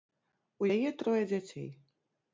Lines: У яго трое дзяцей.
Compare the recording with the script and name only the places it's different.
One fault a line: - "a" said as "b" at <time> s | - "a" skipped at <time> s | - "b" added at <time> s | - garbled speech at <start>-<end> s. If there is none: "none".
- "яго" said as "яе" at 0.7 s